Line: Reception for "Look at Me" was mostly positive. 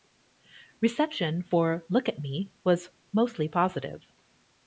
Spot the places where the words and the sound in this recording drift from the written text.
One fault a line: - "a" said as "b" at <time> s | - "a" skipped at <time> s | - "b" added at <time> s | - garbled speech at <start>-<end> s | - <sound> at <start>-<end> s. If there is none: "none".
none